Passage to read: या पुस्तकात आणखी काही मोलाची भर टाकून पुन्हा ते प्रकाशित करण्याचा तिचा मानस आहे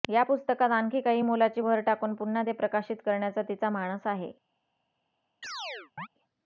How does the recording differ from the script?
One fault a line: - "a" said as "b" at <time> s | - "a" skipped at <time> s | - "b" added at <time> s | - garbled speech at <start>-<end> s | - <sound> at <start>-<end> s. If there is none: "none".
- chirp at 5.4-6.1 s